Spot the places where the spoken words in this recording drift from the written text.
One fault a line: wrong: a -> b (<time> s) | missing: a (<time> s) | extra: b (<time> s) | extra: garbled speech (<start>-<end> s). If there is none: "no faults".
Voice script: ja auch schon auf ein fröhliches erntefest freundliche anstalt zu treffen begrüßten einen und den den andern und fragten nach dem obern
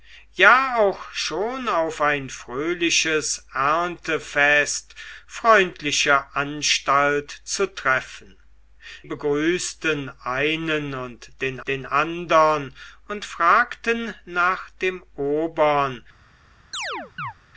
no faults